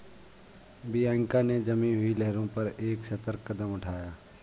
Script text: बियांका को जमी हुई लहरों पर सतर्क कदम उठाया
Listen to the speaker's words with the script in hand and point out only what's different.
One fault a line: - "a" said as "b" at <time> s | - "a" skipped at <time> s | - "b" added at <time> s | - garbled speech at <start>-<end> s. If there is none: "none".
- "को" said as "ने" at 1.4 s
- "एक" added at 2.8 s